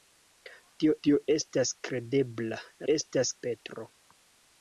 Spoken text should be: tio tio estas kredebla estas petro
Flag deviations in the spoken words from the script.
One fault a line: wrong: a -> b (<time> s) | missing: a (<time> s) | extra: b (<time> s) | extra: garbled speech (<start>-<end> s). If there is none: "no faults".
no faults